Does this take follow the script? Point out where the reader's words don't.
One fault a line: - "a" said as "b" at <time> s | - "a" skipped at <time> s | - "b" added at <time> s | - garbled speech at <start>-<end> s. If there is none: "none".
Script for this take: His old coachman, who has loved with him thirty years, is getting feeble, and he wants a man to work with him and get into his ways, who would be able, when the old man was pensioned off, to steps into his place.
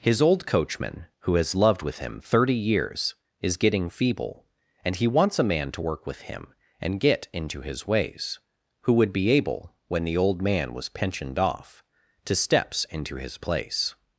none